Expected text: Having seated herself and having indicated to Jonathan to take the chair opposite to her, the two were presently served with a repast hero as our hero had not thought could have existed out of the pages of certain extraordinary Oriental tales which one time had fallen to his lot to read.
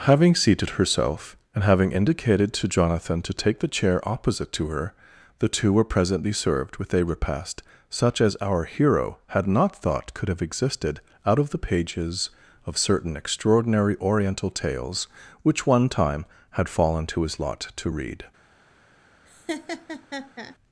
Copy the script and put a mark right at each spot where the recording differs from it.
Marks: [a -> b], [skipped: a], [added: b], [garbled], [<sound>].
Having seated herself and having indicated to Jonathan to take the chair opposite to her, the two were presently served with a repast [hero -> such] as our hero had not thought could have existed out of the pages of certain extraordinary Oriental tales which one time had fallen to his lot to read. [laugh]